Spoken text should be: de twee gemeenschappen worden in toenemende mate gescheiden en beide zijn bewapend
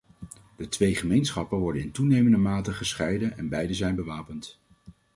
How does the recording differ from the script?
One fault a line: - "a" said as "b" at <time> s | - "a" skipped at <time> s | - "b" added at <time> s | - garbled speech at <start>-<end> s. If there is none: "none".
none